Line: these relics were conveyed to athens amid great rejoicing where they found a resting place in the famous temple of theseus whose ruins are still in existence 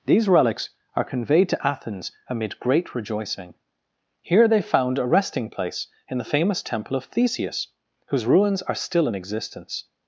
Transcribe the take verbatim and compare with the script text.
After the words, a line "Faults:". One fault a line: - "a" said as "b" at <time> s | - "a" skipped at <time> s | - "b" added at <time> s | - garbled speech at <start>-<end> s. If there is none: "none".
these relics are conveyed to athens amid great rejoicing here they found a resting place in the famous temple of theseus whose ruins are still in existence
Faults:
- "were" said as "are" at 0.9 s
- "where" said as "here" at 4.2 s